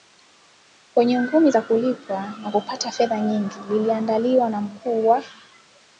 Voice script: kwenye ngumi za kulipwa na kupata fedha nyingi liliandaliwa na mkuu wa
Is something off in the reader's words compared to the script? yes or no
no